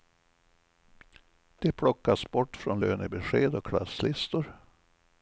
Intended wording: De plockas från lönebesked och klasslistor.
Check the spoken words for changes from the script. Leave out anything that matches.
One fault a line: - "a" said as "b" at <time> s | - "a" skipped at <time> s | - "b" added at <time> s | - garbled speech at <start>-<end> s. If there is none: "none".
- "bort" added at 2.3 s